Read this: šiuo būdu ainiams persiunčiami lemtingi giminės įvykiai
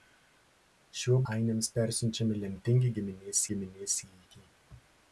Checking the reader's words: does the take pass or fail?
fail